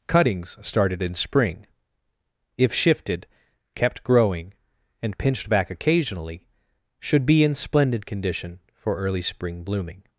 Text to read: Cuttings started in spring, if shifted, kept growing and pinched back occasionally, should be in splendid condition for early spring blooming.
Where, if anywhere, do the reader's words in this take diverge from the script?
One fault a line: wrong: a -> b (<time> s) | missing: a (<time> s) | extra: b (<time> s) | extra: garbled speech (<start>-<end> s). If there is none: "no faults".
no faults